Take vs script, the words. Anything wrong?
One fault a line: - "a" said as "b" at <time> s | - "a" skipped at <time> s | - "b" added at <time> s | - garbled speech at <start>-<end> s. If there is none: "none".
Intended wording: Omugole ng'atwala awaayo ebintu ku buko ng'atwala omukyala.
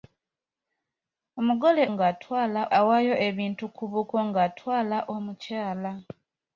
none